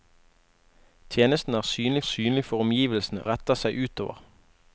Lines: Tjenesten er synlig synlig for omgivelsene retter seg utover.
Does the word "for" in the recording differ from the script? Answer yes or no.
no